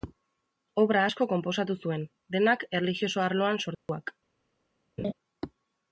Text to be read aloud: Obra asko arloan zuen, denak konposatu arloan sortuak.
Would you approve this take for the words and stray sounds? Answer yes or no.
no